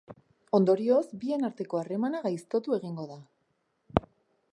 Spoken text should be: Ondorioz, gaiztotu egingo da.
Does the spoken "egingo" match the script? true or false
true